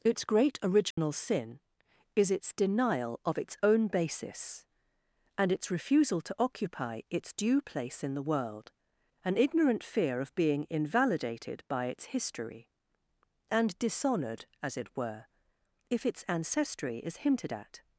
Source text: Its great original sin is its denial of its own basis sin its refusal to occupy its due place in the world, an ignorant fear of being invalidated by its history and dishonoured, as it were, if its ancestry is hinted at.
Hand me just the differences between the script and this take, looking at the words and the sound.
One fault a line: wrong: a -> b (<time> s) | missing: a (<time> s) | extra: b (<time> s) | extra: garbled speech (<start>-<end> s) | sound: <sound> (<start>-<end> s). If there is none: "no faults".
sound: dropout (0.9-1.0 s)
wrong: sin -> and (5.4 s)